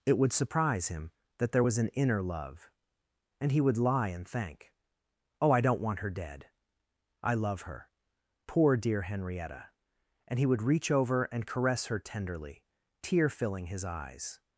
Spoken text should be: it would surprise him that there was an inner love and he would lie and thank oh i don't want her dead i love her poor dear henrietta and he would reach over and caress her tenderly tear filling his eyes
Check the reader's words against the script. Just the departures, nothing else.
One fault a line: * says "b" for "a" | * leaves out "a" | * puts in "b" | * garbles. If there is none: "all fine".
all fine